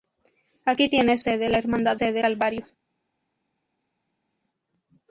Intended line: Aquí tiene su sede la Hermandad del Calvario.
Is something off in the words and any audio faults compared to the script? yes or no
yes